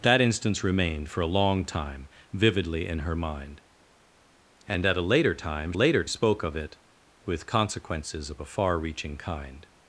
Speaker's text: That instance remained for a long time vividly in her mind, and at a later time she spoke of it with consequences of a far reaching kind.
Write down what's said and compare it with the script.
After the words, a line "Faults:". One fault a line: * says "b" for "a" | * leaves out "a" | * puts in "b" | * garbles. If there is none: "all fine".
That instance remained for a long time vividly in her mind, and at a later time later spoke of it with consequences of a far reaching kind.
Faults:
* says "later" for "she"